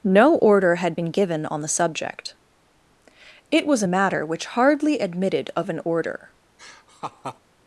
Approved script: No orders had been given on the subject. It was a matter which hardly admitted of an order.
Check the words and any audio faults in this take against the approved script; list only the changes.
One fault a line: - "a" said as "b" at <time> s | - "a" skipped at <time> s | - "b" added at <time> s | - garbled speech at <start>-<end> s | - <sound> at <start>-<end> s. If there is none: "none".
- "orders" said as "order" at 0.4 s
- laugh at 6.6-7.4 s